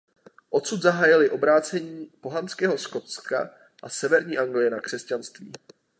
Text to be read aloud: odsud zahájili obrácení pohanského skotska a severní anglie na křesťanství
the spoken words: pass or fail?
pass